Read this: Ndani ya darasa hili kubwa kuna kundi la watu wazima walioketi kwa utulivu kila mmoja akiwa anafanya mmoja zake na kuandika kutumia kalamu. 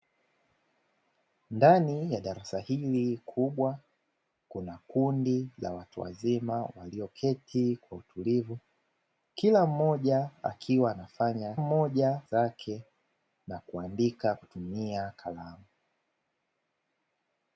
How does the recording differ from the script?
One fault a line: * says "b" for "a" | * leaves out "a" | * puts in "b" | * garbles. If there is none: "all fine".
all fine